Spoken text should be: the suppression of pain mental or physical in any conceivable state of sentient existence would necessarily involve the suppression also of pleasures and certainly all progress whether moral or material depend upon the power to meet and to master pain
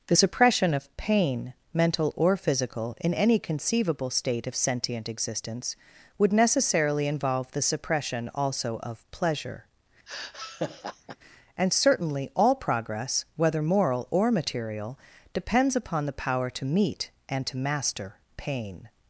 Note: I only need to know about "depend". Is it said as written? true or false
false